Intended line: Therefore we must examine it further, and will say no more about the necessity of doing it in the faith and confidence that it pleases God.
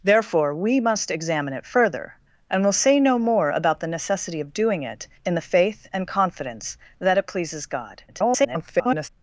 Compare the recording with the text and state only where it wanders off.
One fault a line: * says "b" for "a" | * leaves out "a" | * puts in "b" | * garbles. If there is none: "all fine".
* garbles